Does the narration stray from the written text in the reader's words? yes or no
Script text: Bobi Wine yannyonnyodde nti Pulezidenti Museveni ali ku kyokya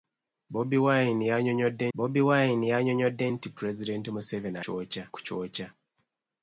yes